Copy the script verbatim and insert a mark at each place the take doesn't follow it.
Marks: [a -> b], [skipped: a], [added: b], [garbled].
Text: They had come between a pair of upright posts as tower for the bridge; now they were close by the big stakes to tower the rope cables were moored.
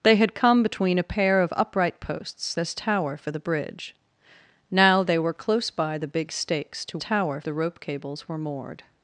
They had come between a pair of upright posts as tower for the bridge; now they were close by the big stakes to tower the rope cables were moored.